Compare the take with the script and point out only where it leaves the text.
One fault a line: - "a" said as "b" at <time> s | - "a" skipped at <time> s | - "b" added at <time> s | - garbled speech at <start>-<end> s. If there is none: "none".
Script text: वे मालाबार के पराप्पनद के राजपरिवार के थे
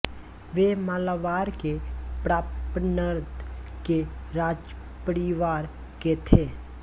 none